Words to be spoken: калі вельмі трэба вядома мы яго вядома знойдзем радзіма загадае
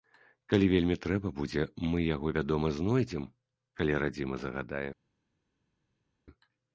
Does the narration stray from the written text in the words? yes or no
yes